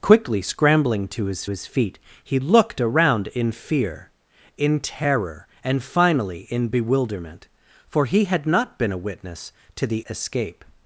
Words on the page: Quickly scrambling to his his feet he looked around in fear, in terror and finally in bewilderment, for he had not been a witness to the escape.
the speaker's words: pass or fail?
pass